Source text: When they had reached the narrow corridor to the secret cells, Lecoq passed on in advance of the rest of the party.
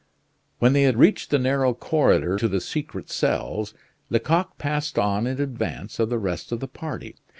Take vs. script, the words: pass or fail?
pass